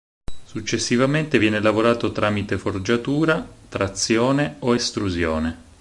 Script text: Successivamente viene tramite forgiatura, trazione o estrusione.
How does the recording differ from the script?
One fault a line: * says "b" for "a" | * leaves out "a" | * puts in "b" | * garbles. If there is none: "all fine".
* puts in "lavorato"